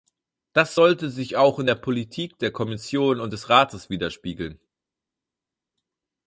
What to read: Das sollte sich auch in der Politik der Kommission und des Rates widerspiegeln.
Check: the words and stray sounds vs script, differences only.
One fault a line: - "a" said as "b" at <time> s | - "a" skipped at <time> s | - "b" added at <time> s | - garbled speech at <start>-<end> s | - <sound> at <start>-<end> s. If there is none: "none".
none